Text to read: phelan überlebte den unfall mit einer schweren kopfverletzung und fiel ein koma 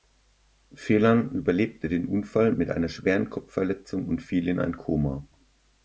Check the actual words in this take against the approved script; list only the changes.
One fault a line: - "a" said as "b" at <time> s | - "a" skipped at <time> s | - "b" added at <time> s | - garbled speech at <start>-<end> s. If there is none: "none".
- "in" added at 4.5 s